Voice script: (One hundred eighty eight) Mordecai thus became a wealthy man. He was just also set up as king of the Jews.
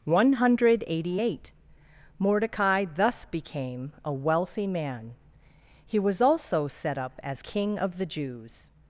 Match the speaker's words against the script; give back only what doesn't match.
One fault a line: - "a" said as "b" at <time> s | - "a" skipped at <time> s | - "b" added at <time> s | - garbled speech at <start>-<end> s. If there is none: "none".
- "just" skipped at 6.2 s